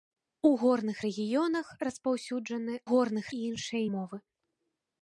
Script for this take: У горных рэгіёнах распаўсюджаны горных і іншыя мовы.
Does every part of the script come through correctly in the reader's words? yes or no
yes